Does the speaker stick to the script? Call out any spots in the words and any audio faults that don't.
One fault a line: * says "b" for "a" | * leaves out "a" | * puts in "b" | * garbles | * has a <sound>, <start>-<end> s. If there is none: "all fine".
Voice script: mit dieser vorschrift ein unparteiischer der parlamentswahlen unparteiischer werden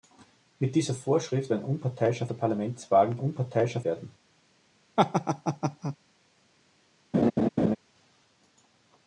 * has a laugh, 5.0-6.0 s
* has a laugh, 7.1-7.8 s